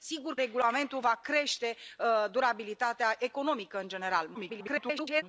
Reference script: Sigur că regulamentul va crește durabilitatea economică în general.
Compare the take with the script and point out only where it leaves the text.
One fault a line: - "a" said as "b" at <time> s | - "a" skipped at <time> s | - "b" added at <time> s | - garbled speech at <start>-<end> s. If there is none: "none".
- "că" skipped at 0.3 s
- garbled speech at 4.3-5.2 s